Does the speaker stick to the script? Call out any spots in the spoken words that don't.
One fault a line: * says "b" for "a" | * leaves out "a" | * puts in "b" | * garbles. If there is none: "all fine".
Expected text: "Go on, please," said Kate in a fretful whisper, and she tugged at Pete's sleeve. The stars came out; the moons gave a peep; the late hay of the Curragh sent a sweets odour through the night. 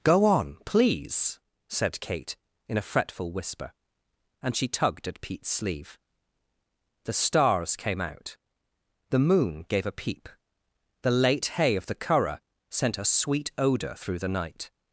* says "moon" for "moons"
* says "sweet" for "sweets"